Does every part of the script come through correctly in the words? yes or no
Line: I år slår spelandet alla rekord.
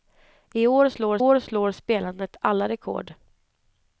no